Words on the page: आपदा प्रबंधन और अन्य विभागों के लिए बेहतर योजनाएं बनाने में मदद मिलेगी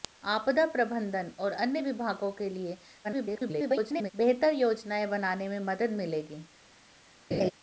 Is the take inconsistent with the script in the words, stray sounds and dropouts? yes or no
yes